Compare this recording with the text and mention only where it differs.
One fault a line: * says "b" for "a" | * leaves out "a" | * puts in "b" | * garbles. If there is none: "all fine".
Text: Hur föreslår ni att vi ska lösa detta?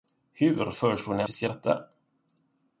* leaves out "att"
* leaves out "lösa"